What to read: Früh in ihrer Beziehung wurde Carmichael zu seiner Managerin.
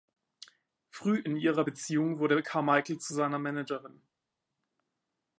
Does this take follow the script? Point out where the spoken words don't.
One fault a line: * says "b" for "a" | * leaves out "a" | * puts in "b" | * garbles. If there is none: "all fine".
all fine